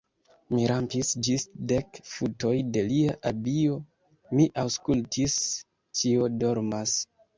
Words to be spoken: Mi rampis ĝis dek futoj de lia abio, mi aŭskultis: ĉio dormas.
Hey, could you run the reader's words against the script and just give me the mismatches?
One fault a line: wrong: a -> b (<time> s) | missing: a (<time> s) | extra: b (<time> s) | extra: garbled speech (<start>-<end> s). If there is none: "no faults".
no faults